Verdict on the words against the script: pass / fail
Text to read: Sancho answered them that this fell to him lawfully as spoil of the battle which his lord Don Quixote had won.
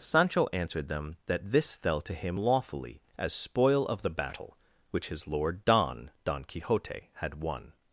fail